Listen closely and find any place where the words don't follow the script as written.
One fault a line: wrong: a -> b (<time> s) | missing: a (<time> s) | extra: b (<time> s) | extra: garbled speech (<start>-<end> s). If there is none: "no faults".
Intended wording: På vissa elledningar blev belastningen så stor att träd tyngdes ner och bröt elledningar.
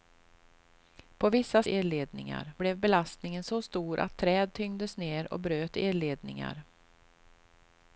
no faults